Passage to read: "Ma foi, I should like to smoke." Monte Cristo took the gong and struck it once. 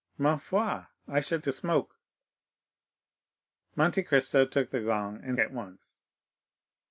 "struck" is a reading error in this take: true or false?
true